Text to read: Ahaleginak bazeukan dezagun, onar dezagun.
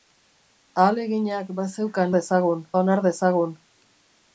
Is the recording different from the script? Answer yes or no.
no